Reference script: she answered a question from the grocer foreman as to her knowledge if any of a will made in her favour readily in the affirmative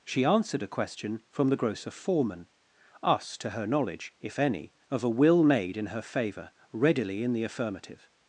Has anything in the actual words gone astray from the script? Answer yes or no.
yes